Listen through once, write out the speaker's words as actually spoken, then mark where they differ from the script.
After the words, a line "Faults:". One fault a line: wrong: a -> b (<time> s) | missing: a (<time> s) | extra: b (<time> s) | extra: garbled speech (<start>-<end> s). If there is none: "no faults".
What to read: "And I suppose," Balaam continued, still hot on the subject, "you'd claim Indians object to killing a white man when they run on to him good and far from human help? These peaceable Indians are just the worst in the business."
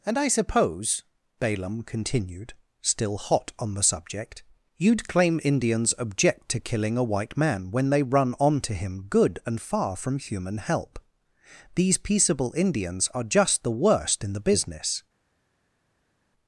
"And I suppose," Balaam continued, still hot on the subject, "you'd claim Indians object to killing a white man when they run on to him good and far from human help? These peaceable Indians are just the worst in the business."
Faults:
no faults